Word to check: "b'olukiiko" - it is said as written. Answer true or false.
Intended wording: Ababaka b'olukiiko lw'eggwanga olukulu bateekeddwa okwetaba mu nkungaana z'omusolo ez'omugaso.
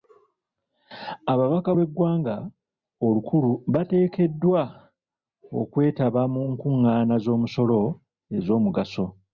false